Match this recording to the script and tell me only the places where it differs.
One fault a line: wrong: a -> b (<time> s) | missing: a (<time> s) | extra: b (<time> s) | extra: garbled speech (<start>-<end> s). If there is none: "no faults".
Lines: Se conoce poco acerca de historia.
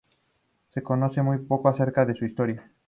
extra: muy (1.2 s)
extra: su (2.1 s)